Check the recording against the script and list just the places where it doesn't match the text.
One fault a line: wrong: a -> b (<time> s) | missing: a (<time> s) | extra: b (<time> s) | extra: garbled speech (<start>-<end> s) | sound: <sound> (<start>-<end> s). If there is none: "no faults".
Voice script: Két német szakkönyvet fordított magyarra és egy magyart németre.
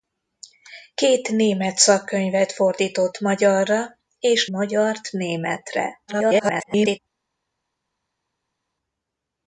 missing: egy (4.5 s)
extra: garbled speech (6.1-7.0 s)